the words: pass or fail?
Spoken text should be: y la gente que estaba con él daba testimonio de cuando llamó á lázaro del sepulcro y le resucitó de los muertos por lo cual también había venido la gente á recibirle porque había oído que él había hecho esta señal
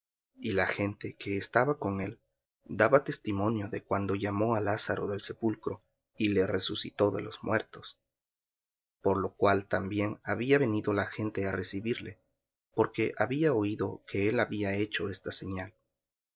pass